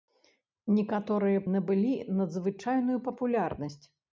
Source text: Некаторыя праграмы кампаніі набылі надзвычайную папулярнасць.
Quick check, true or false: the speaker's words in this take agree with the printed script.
false